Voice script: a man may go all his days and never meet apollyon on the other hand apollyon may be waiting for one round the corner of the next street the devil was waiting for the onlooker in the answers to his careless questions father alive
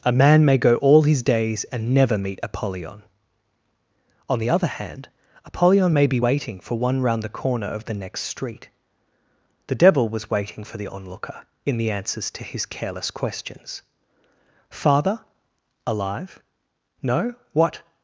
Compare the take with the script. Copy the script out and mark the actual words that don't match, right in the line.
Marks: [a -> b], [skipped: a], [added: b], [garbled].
a man may go all his days and never meet apollyon on the other hand apollyon may be waiting for one round the corner of the next street the devil was waiting for the onlooker in the answers to his careless questions father alive [added: no what]